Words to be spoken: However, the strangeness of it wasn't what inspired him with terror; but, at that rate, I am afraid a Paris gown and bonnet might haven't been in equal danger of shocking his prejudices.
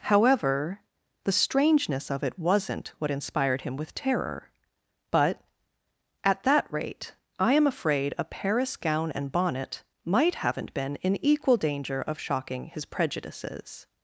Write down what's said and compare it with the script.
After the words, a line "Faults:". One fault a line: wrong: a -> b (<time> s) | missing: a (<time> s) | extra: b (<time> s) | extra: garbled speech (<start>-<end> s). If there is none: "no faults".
However, the strangeness of it wasn't what inspired him with terror; but, at that rate, I am afraid a Paris gown and bonnet might haven't been in equal danger of shocking his prejudices.
Faults:
no faults